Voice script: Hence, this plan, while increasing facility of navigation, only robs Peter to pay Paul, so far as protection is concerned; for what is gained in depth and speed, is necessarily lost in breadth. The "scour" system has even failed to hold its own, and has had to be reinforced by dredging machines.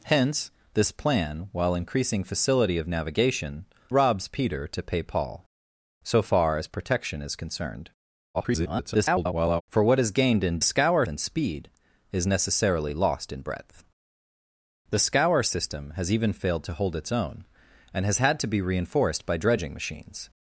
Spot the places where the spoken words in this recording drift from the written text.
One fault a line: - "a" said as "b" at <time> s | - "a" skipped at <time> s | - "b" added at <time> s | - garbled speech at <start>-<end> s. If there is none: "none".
- "only" skipped at 3.6 s
- garbled speech at 8.3-9.6 s
- "depth" said as "scour" at 10.6 s